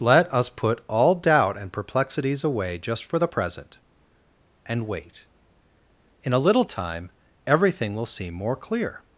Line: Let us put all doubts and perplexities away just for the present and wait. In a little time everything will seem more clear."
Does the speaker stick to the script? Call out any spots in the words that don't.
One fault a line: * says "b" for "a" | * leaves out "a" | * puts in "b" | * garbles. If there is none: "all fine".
* says "doubt" for "doubts"